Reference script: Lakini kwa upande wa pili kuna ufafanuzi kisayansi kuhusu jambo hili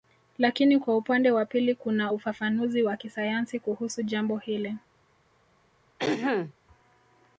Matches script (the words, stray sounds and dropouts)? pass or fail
fail